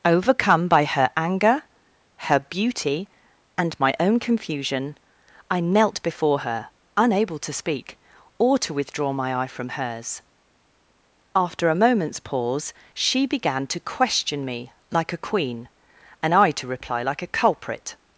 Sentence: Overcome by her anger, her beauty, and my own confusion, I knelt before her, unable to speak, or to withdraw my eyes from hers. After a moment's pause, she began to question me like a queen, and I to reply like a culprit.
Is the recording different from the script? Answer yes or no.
yes